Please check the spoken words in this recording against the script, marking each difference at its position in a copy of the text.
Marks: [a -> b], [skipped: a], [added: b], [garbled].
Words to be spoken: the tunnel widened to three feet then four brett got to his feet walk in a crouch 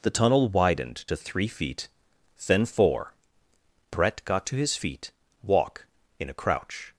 the tunnel widened to three feet then four brett got to his feet walk in a crouch